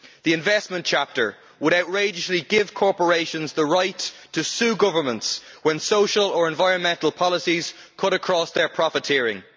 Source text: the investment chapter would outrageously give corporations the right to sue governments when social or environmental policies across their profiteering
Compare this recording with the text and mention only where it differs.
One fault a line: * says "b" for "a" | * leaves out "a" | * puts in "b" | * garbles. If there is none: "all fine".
* puts in "cut"